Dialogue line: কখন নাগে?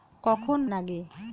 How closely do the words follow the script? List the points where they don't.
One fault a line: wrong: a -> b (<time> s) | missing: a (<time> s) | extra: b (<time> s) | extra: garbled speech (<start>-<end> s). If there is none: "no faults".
no faults